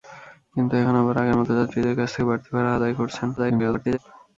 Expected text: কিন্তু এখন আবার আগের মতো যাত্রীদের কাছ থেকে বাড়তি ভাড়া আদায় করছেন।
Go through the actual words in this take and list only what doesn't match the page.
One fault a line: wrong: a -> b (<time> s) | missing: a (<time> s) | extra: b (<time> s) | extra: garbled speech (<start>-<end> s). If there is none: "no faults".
extra: garbled speech (3.4-4.0 s)